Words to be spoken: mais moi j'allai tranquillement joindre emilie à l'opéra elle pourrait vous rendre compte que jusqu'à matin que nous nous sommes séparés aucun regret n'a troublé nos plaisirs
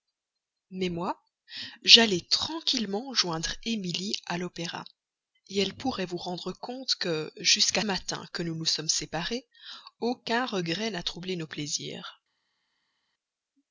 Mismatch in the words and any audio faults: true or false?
false